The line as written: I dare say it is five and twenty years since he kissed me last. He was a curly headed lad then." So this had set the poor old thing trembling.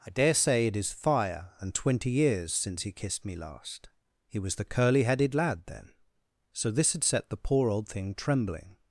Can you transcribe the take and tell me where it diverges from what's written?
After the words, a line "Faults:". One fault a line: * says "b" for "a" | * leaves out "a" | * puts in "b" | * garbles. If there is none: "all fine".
I dare say it is fire and twenty years since he kissed me last. He was the curly headed lad then." So this had set the poor old thing trembling.
Faults:
* says "fire" for "five"
* says "the" for "a"